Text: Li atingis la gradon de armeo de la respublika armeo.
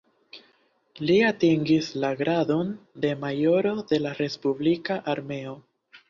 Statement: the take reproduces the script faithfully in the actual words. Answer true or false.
false